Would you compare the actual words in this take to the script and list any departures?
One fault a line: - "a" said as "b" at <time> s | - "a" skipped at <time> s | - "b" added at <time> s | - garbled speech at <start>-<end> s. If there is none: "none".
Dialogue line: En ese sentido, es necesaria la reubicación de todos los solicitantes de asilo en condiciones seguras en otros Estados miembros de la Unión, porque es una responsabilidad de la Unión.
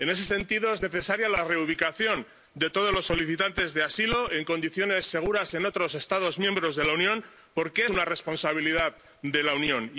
- "es" skipped at 7.8 s